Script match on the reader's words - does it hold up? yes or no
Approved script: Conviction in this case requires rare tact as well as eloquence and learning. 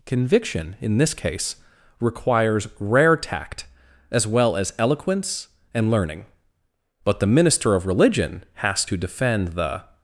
no